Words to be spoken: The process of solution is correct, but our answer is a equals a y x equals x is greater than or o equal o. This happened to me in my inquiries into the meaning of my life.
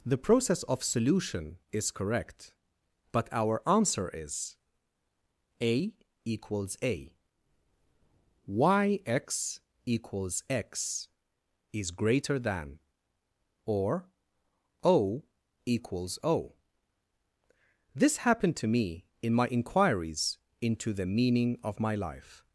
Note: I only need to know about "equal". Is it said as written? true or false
false